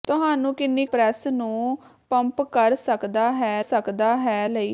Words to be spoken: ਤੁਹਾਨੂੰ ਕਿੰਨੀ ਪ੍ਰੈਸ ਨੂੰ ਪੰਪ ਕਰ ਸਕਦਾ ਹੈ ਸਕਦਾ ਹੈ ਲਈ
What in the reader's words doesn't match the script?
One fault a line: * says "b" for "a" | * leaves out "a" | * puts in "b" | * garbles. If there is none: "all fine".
all fine